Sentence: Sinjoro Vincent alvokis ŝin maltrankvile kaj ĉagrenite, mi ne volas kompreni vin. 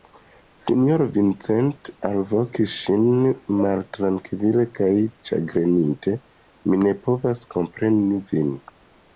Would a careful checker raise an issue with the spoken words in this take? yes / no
yes